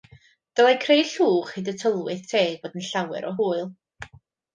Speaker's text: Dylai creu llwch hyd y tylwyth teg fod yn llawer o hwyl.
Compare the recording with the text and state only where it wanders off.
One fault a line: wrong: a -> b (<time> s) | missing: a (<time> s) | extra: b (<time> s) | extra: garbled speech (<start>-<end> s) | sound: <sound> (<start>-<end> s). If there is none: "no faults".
no faults